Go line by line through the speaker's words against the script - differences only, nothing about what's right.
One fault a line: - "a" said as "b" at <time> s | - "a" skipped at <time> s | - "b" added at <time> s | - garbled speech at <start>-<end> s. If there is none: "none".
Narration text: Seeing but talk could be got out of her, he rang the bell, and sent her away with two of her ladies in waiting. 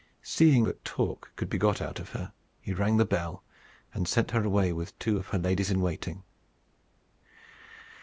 none